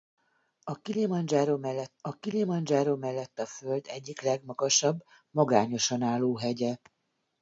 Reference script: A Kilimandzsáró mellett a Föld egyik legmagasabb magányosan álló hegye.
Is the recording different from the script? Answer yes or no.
yes